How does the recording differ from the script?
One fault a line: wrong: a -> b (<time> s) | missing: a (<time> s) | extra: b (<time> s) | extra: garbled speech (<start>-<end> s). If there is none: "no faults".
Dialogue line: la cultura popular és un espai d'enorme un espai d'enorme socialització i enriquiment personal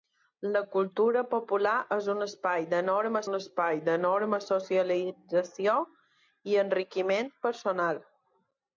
no faults